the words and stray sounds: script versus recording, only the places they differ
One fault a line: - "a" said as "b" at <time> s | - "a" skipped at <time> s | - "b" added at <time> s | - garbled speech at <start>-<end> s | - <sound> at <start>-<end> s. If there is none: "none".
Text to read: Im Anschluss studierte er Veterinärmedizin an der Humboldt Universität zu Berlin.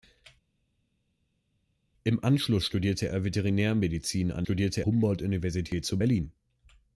- "der" said as "studierte" at 4.4 s